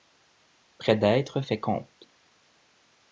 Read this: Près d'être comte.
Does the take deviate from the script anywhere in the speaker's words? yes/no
yes